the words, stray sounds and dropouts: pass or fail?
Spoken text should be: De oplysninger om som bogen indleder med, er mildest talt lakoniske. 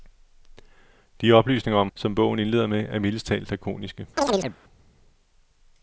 fail